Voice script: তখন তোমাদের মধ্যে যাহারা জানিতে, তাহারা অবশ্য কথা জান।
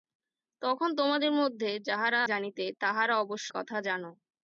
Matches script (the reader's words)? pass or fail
pass